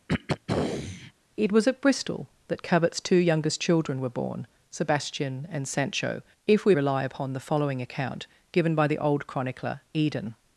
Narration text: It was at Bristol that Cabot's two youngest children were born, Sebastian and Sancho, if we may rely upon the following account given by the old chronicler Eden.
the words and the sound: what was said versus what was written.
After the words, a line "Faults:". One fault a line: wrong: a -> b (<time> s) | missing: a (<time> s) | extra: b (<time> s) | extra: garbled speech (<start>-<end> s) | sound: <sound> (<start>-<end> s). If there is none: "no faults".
It was at Bristol that Cabot's two youngest children were born, Sebastian and Sancho, if we rely upon the following account given by the old chronicler Eden.
Faults:
sound: throat clearing (0.1-1.1 s)
missing: may (6.8 s)